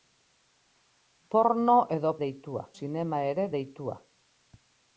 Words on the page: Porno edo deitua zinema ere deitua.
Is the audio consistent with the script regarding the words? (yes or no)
yes